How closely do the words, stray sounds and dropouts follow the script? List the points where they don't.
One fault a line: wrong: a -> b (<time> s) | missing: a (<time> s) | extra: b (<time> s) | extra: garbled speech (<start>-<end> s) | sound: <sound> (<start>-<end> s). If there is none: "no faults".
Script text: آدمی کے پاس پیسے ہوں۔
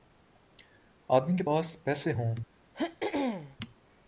sound: throat clearing (2.7-3.6 s)